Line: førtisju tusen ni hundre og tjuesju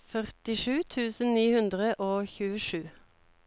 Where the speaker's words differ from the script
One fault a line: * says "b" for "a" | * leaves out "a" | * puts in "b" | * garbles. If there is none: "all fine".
all fine